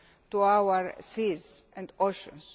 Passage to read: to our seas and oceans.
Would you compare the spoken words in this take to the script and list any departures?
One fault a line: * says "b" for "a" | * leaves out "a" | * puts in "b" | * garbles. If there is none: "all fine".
all fine